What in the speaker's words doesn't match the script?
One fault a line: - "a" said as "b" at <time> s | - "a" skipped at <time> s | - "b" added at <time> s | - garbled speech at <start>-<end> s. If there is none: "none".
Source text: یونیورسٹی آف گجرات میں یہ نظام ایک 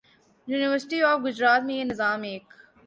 none